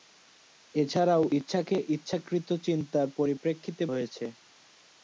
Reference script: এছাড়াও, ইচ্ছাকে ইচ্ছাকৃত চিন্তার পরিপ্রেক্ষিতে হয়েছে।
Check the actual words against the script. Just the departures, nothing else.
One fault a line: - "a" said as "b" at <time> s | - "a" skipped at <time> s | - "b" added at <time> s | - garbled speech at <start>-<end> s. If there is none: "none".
none